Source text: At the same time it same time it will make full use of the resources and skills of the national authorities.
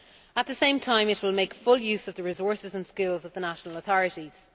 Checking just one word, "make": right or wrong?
right